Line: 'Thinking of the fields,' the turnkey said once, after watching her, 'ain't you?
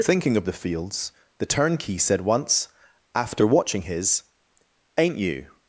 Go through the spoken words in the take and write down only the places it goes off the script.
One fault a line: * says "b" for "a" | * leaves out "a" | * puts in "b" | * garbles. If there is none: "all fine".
* says "his" for "her"